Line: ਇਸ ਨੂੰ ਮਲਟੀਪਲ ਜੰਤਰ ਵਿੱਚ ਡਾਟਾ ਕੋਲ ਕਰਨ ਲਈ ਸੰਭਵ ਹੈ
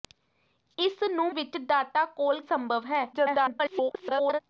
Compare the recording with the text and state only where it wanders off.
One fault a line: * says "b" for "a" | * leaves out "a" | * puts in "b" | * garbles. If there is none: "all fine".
* leaves out "ਮਲਟੀਪਲ ਜੰਤਰ"
* leaves out "ਕਰਨ ਲਈ"
* garbles